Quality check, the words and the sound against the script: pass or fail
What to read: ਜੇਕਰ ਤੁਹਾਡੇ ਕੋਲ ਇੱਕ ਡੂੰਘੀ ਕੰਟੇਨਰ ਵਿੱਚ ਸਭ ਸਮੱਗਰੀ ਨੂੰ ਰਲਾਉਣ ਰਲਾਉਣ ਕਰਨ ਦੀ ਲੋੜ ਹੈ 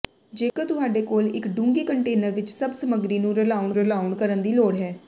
fail